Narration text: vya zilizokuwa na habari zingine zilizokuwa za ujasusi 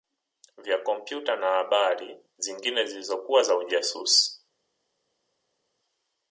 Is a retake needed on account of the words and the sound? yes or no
yes